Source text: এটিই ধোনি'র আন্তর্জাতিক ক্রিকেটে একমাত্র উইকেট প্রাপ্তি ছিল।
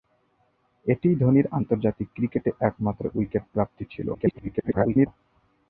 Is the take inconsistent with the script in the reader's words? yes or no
yes